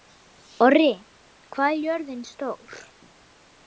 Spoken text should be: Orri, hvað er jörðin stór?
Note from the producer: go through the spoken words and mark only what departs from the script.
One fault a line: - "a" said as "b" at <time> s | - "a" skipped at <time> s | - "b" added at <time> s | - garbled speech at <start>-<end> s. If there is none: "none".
none